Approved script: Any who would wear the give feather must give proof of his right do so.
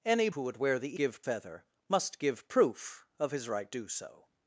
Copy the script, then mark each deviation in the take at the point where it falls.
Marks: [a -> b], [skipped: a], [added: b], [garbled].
Any who would wear the give feather must give proof of his right do so.